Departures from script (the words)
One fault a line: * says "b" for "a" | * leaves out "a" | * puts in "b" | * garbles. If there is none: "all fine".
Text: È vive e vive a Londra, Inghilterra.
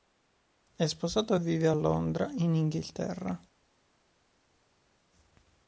* says "sposato" for "vive"
* puts in "in"